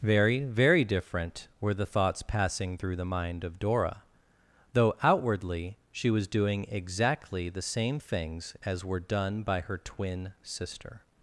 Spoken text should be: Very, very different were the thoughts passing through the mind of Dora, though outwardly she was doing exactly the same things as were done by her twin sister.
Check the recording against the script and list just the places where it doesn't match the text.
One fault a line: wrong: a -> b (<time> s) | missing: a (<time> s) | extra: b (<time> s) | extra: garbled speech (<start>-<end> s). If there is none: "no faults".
no faults